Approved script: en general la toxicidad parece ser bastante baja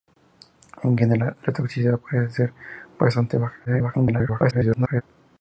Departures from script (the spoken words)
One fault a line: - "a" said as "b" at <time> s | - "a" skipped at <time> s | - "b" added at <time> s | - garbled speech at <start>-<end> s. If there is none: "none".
- garbled speech at 3.6-5.0 s